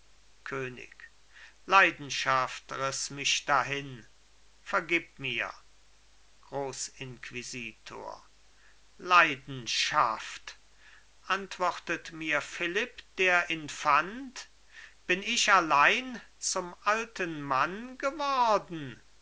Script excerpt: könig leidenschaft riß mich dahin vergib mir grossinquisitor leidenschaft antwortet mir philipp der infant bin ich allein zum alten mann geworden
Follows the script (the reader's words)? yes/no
yes